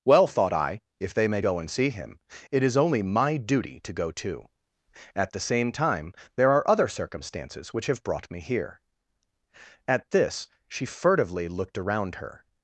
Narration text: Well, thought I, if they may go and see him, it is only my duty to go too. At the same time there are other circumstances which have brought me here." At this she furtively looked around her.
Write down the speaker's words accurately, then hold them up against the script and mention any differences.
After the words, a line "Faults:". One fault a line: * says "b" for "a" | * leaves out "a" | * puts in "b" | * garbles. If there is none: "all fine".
Well, thought I, if they may go and see him, it is only my duty to go too. At the same time there are other circumstances which have brought me here." At this she furtively looked around her.
Faults:
all fine